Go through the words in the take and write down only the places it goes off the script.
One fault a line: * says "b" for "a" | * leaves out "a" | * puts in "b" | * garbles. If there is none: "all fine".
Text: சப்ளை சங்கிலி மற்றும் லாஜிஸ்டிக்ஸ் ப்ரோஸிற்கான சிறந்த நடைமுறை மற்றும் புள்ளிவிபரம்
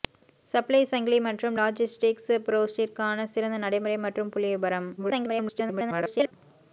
* garbles